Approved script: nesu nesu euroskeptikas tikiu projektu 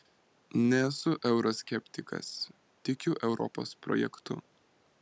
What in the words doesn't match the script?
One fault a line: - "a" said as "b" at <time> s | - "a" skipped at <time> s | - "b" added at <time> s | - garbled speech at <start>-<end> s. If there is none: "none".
- "nesu" skipped at 1.1 s
- "europos" added at 3.3 s